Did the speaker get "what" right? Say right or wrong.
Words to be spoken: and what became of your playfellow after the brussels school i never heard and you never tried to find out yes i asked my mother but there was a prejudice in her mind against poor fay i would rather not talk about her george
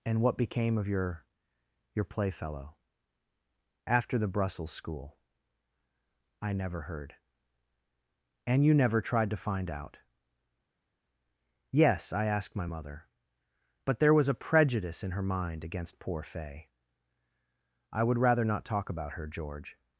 right